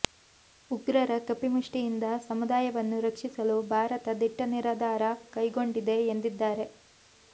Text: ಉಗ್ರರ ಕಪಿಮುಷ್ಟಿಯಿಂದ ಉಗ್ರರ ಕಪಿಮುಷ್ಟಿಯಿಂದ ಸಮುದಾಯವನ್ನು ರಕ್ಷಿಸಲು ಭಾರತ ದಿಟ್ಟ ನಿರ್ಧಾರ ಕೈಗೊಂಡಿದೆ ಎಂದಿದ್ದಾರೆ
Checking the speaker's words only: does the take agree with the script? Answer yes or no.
no